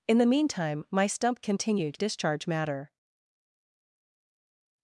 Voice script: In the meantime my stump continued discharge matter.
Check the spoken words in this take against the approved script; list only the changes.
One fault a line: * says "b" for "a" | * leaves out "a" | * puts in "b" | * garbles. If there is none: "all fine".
all fine